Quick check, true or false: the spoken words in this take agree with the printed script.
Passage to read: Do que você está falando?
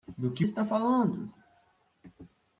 false